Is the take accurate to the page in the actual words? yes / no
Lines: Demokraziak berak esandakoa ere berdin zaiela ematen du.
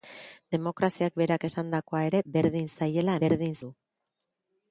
no